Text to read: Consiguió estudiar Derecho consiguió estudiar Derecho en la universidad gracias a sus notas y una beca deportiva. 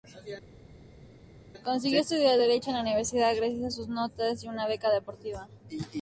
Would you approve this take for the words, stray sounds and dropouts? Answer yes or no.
no